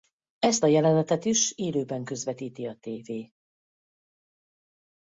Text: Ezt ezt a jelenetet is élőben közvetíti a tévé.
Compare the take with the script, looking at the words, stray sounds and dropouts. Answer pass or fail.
fail